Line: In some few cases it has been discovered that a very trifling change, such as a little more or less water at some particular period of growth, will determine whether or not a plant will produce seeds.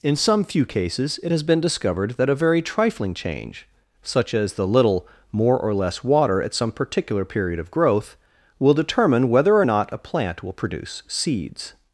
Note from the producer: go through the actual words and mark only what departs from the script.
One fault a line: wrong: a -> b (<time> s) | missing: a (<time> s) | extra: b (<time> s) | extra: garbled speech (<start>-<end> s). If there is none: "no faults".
wrong: a -> the (4.5 s)